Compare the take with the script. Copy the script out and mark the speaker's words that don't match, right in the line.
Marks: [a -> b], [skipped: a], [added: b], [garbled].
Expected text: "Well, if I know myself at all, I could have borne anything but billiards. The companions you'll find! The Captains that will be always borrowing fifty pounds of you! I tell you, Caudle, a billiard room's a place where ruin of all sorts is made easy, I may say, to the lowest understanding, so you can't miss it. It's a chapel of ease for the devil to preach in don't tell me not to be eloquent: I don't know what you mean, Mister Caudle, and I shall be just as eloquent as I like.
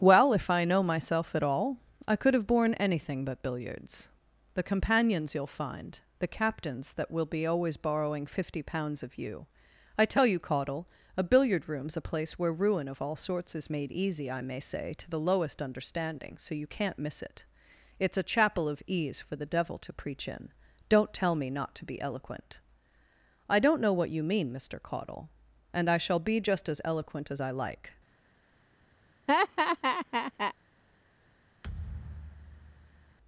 "Well, if I know myself at all, I could have borne anything but billiards. The companions you'll find! The Captains that will be always borrowing fifty pounds of you! I tell you, Caudle, a billiard room's a place where ruin of all sorts is made easy, I may say, to the lowest understanding, so you can't miss it. It's a chapel of ease for the devil to preach in don't tell me not to be eloquent: I don't know what you mean, Mister Caudle, and I shall be just as eloquent as I like.